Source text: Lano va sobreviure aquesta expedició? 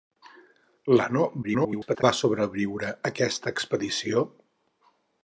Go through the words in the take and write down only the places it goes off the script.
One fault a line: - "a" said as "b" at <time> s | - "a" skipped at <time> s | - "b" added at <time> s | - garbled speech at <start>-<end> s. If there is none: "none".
- garbled speech at 1.4-2.0 s